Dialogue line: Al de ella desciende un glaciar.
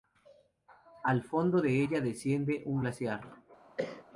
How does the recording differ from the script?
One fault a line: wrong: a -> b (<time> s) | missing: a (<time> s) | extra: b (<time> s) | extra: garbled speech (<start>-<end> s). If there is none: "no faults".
extra: fondo (1.2 s)